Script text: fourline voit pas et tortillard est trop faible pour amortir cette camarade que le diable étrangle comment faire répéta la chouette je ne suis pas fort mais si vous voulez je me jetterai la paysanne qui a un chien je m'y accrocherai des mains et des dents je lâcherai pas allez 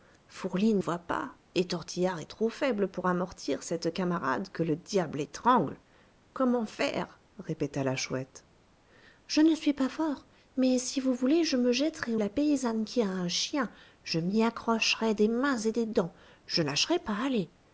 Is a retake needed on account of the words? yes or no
no